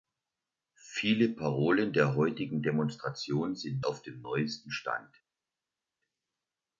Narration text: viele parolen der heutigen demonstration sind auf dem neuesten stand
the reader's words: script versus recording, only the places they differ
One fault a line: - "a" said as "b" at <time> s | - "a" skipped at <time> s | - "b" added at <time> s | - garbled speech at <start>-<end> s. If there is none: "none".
none